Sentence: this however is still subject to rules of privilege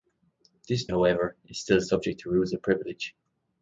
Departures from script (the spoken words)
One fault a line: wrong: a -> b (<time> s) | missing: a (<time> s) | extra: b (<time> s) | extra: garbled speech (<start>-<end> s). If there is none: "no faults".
no faults